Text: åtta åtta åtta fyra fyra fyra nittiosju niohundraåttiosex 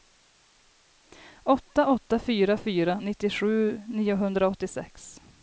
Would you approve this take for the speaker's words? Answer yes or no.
no